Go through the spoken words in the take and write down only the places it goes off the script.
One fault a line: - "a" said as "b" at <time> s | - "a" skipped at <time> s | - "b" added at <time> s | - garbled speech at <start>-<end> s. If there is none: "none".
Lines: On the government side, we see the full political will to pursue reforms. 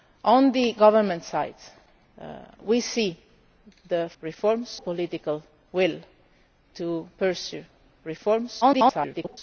- "full" said as "reforms" at 4.2 s
- garbled speech at 8.6-9.4 s